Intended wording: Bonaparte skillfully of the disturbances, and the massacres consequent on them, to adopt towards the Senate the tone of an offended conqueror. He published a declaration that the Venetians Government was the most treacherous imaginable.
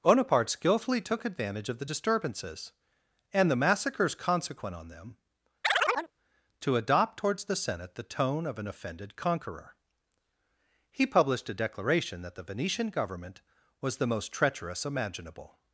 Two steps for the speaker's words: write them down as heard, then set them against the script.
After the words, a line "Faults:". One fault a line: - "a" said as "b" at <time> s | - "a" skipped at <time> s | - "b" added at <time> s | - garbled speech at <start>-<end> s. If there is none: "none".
Bonaparte skillfully took advantage of the disturbances, and the massacres consequent on them, to adopt towards the Senate the tone of an offended conqueror. He published a declaration that the Venetian Government was the most treacherous imaginable.
Faults:
- "took advantage" added at 1.0 s
- "Venetians" said as "Venetian" at 12.4 s